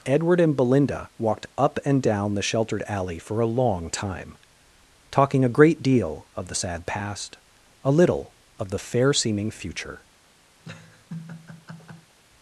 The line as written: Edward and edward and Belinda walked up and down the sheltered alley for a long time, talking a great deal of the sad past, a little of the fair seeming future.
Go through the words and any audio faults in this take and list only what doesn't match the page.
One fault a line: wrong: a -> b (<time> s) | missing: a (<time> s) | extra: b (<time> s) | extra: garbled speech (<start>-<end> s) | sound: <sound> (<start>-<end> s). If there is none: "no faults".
missing: edward and (0.6 s)
sound: laugh (10.6-12.2 s)